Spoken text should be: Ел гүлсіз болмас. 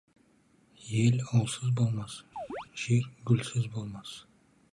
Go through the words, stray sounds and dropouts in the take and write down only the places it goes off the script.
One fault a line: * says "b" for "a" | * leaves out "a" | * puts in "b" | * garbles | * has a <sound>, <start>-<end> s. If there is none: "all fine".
* puts in "ұлсыз болмас жер"
* has a chirp, 2.4-2.7 s